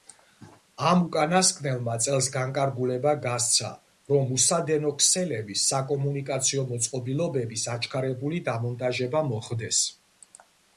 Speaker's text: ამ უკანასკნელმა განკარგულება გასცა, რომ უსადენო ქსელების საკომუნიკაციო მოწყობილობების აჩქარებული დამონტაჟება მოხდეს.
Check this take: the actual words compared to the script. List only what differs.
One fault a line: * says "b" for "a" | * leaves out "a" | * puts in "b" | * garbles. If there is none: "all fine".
* puts in "წელს"